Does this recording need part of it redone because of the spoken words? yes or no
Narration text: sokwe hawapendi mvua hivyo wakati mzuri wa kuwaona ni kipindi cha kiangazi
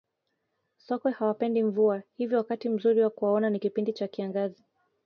no